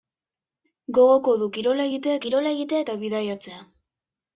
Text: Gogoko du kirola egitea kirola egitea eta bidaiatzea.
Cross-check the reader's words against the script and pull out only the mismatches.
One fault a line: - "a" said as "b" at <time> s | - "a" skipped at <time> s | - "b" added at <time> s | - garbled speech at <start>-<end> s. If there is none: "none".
none